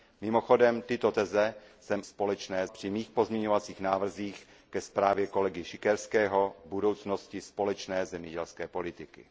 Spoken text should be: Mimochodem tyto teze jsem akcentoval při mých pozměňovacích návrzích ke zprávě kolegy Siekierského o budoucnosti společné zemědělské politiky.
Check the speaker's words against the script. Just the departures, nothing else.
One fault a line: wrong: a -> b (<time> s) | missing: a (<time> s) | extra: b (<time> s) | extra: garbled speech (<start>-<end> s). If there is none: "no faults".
wrong: akcentoval -> společné (2.0 s)